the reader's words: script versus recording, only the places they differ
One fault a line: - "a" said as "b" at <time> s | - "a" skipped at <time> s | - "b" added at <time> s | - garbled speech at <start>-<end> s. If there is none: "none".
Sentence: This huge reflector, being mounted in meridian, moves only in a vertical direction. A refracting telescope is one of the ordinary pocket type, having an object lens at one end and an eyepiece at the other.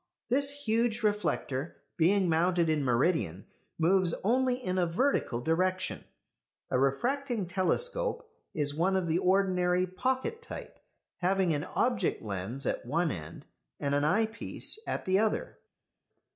none